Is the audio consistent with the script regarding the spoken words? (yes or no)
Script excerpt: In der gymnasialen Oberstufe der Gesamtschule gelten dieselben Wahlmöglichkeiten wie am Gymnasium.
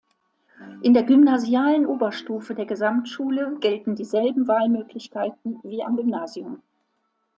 yes